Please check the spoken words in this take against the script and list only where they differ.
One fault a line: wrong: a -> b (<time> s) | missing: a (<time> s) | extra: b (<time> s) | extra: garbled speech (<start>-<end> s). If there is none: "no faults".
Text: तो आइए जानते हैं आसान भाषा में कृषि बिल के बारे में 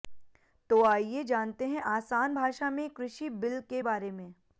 no faults